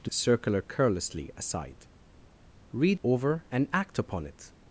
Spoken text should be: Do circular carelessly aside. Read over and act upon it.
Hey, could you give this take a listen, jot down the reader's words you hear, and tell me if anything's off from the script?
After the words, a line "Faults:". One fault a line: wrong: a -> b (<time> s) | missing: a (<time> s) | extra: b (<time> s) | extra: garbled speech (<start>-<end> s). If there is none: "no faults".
Do circular carelessly aside. Read over and act upon it.
Faults:
no faults